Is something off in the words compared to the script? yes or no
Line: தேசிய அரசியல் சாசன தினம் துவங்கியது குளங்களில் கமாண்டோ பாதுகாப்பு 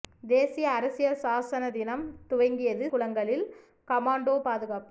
no